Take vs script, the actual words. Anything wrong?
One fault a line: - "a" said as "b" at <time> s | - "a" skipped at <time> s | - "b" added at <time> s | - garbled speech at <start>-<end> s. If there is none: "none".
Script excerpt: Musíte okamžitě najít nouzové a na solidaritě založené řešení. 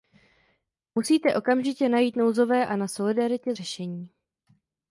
- "založené" skipped at 3.5 s